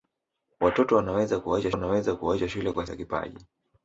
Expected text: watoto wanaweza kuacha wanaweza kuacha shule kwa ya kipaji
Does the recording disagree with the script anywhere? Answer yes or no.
no